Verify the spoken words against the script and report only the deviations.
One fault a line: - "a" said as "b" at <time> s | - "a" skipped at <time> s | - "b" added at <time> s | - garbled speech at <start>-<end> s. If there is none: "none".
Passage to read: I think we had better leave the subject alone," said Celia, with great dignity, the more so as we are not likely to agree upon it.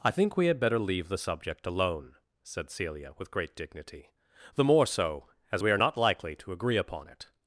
none